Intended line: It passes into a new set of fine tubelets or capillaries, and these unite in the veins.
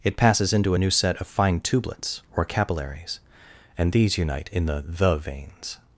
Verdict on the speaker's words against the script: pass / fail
fail